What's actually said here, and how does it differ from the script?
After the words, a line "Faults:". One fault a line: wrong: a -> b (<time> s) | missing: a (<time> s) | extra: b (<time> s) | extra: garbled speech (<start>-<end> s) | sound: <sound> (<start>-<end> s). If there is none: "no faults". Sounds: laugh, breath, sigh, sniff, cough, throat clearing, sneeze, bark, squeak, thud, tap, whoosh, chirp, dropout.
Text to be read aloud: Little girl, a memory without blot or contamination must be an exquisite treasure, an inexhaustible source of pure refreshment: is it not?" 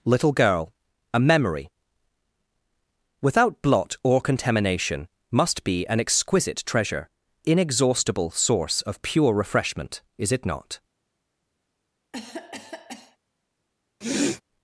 Little girl, a memory without blot or contamination must be an exquisite treasure, inexhaustible source of pure refreshment: is it not?"
Faults:
missing: an (7.1 s)
sound: cough (12.1-13.2 s)
sound: sniff (14.0-14.4 s)